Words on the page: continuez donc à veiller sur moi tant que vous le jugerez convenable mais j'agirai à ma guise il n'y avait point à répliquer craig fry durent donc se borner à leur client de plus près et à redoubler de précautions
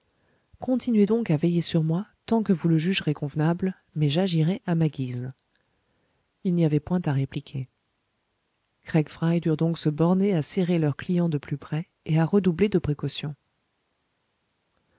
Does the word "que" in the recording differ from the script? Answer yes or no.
no